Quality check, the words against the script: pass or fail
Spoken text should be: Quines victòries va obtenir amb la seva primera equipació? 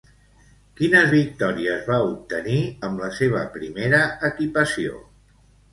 pass